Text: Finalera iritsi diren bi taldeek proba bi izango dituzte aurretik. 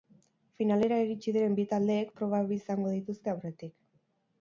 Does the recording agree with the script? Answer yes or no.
yes